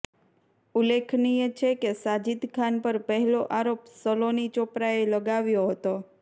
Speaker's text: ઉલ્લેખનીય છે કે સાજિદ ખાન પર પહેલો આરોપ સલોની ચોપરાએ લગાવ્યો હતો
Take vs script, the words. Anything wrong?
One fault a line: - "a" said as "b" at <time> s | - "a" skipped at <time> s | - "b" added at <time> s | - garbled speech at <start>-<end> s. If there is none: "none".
none